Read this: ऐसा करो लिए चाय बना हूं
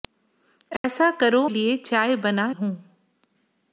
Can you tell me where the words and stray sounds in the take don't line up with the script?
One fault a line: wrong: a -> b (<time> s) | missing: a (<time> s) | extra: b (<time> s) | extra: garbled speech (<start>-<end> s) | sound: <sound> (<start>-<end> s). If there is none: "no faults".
sound: dropout (0.8-0.8 s)